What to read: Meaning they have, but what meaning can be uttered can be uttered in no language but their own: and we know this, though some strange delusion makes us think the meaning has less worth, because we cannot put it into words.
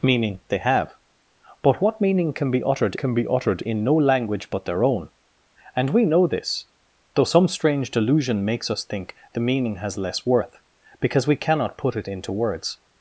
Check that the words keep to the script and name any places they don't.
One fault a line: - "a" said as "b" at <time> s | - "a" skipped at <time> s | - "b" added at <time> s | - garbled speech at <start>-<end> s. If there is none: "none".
none